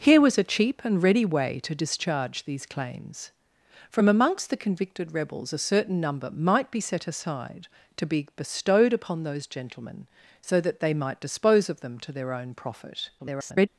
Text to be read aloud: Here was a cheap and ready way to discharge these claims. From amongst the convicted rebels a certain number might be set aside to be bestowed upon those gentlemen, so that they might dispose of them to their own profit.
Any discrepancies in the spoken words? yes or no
yes